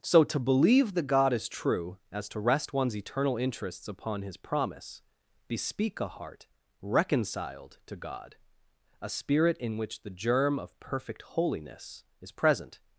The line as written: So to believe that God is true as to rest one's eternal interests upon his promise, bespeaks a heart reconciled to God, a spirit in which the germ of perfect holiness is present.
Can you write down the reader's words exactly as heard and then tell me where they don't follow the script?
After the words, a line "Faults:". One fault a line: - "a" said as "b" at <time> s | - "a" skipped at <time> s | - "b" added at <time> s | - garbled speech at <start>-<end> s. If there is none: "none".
So to believe that God is true as to rest one's eternal interests upon his promise, bespeak a heart reconciled to God, a spirit in which the germ of perfect holiness is present.
Faults:
- "bespeaks" said as "bespeak" at 5.5 s